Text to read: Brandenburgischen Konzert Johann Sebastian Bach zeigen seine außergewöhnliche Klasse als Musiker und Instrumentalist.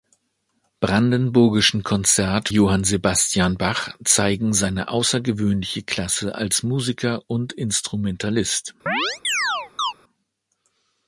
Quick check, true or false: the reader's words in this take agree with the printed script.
true